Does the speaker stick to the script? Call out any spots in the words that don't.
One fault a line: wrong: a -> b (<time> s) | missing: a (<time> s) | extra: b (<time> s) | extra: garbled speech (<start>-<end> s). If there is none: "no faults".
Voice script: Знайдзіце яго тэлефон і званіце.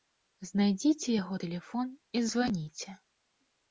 no faults